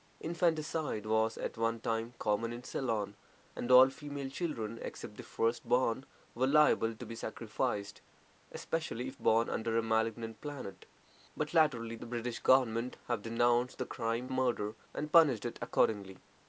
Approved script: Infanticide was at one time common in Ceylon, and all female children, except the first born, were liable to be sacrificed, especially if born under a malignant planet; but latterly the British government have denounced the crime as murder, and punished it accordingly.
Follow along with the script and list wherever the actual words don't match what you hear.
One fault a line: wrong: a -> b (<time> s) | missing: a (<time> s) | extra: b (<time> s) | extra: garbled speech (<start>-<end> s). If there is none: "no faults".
missing: as (14.3 s)